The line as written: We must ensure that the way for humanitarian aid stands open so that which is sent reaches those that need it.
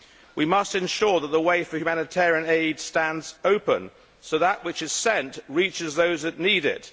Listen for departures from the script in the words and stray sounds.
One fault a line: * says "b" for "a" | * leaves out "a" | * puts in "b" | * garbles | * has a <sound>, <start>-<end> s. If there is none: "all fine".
all fine